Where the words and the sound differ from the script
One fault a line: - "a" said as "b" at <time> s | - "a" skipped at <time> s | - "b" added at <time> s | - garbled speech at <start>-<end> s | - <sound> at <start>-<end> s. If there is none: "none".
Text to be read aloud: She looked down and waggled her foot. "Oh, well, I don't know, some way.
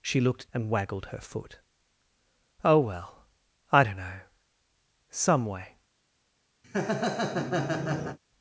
- "down" skipped at 0.5 s
- laugh at 6.6-8.2 s